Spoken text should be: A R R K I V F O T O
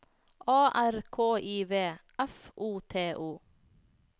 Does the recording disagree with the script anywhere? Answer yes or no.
yes